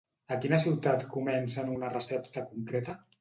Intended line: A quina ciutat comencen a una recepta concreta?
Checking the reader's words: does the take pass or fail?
pass